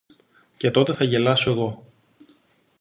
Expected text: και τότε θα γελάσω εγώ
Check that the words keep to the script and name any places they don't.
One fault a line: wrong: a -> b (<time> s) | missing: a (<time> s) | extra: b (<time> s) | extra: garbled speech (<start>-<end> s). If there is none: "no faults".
no faults